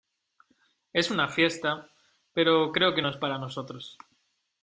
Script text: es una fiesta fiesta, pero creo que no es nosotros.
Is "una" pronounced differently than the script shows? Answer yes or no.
no